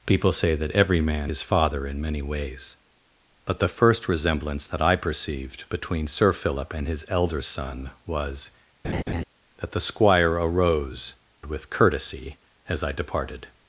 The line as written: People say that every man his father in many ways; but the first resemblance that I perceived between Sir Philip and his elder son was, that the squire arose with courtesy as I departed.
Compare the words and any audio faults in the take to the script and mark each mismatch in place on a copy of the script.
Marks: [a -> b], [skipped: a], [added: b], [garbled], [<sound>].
People say that every man his father in many ways; but the first resemblance that I perceived between Sir Philip and his elder son was, [laugh] that the squire arose with courtesy as I departed.